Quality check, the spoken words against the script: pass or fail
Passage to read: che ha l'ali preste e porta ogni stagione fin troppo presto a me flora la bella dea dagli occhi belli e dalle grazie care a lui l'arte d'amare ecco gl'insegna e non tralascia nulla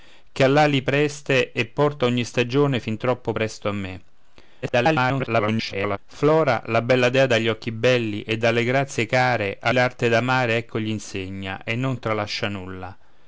fail